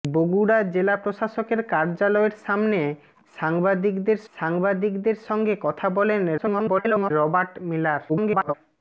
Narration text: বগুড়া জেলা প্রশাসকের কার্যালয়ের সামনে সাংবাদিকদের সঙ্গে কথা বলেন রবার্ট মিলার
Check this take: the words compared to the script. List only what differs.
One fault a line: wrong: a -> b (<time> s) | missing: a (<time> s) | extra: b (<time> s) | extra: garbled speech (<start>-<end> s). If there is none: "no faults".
extra: সাংবাদিকদের (4.3 s)
extra: garbled speech (6.4-7.1 s)
extra: garbled speech (8.1-8.5 s)